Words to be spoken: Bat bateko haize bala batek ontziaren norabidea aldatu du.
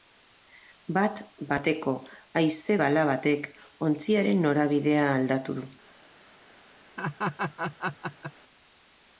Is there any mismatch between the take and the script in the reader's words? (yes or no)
no